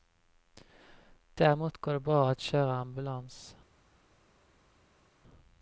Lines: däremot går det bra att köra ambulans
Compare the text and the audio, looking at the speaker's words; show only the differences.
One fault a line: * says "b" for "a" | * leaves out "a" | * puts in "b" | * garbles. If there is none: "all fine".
all fine